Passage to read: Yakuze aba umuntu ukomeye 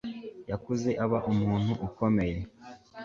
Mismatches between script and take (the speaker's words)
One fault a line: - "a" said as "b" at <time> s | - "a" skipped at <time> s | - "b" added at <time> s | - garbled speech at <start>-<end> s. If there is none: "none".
none